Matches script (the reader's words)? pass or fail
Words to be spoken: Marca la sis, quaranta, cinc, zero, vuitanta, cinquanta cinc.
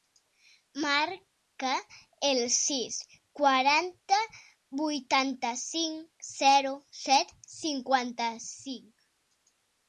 fail